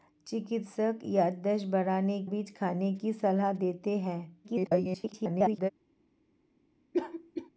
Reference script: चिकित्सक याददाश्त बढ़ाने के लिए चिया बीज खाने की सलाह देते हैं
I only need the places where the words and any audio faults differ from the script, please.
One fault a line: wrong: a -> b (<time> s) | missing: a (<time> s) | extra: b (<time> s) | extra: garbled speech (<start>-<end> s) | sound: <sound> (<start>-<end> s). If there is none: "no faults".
missing: के लिए चिया (2.2 s)
extra: garbled speech (4.4-5.7 s)
sound: cough (6.9-7.5 s)